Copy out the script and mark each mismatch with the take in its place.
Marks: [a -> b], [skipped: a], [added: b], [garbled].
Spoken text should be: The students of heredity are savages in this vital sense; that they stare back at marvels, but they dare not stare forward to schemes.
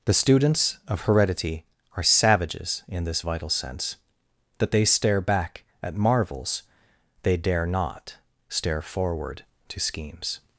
The students of heredity are savages in this vital sense; that they stare back at marvels, [skipped: but] they dare not stare forward to schemes.